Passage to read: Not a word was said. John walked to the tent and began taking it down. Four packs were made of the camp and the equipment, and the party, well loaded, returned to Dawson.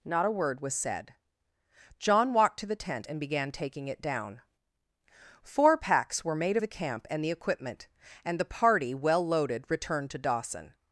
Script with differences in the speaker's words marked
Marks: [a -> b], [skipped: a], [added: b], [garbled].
Not a word was said. John walked to the tent and began taking it down. Four packs were made [skipped: of] the camp and the equipment, and the party, well loaded, returned to Dawson.